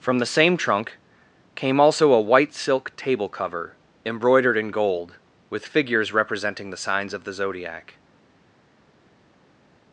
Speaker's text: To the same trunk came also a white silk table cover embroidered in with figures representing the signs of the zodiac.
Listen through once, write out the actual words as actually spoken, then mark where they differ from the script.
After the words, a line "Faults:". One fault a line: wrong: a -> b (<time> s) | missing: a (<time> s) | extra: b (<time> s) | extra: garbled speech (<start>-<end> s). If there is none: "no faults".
From the same trunk came also a white silk table cover embroidered in gold with figures representing the signs of the zodiac.
Faults:
wrong: To -> From (0.0 s)
extra: gold (4.7 s)